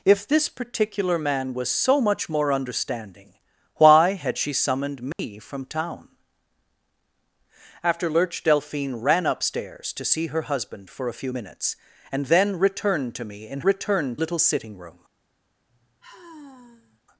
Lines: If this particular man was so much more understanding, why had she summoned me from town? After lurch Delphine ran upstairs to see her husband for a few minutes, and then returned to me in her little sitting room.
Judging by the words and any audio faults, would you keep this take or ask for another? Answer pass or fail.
fail